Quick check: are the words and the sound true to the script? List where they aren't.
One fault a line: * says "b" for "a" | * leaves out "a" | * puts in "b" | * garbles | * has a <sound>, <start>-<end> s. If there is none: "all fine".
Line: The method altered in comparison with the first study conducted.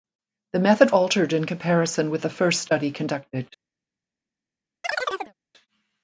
* has a chirp, 4.8-5.3 s